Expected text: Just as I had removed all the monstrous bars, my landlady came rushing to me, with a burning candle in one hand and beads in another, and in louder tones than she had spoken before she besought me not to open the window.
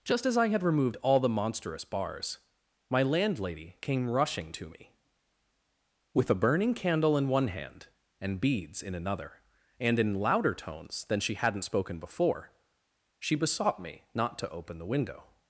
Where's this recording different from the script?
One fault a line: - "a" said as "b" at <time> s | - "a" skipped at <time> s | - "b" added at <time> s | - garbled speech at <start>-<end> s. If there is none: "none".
- "had" said as "hadn't" at 11.3 s